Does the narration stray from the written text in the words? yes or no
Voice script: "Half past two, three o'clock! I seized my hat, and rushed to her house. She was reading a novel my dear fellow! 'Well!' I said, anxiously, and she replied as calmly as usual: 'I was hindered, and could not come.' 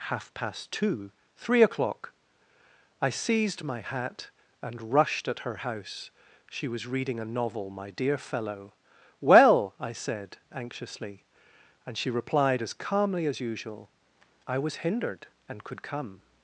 yes